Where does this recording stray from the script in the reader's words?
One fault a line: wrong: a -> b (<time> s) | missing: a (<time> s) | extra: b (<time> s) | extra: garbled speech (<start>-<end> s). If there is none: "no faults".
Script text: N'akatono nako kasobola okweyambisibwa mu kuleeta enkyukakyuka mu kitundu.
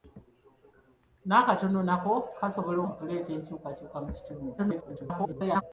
missing: okweyambisibwa (2.8 s)
extra: garbled speech (4.6-5.6 s)